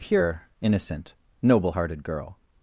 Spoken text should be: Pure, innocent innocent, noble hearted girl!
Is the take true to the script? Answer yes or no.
no